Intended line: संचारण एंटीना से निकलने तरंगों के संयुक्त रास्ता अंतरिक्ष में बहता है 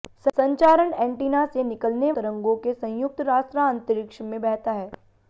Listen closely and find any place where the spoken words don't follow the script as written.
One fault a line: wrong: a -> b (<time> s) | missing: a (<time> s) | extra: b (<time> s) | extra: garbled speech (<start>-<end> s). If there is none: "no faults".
no faults